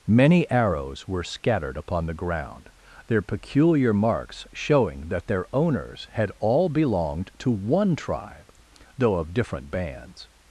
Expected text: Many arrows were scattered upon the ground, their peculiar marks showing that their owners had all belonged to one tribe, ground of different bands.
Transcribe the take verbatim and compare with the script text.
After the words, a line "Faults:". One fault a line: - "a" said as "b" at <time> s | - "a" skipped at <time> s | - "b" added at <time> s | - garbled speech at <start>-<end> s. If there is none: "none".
Many arrows were scattered upon the ground, their peculiar marks showing that their owners had all belonged to one tribe, though of different bands.
Faults:
- "ground" said as "though" at 9.0 s